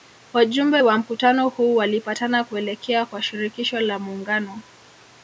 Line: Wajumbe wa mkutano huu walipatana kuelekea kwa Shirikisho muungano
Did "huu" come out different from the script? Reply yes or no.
no